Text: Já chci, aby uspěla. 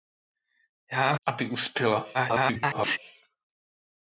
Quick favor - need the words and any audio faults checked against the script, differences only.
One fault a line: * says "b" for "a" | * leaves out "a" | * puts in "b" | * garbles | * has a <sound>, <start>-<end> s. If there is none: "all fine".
* leaves out "chci"
* garbles